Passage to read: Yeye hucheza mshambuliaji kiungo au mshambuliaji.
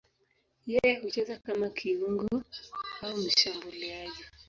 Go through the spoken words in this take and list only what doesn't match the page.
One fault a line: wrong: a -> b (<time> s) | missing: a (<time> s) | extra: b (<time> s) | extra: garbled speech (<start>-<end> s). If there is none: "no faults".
wrong: mshambuliaji -> kama (1.4 s)